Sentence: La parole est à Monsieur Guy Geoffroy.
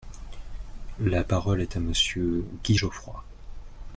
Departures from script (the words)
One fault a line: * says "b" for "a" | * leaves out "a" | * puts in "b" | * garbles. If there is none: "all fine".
all fine